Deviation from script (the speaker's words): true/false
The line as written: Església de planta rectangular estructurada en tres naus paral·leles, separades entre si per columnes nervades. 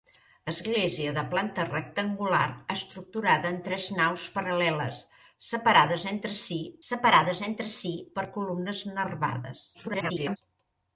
true